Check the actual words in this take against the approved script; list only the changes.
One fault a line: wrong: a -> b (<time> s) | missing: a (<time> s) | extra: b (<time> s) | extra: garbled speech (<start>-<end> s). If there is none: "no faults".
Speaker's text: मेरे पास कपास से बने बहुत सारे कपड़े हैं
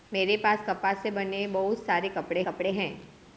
extra: कपड़े (2.4 s)